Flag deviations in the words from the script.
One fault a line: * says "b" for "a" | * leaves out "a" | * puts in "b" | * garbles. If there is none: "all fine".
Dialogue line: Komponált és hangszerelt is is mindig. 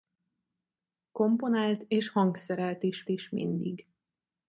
all fine